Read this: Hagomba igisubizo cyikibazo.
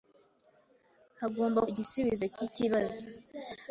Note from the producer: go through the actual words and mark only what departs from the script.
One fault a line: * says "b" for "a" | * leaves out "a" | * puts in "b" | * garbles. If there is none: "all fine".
all fine